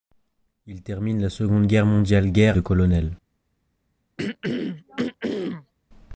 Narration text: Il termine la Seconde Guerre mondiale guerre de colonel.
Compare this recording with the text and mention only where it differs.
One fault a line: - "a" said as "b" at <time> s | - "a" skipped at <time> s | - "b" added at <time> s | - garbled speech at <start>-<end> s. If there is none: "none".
none